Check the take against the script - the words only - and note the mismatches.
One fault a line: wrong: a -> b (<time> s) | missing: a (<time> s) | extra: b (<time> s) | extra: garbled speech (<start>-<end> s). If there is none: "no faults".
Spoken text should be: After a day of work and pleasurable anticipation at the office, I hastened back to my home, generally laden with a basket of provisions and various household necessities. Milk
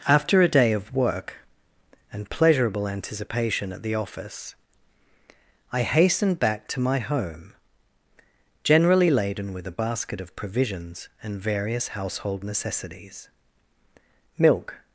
no faults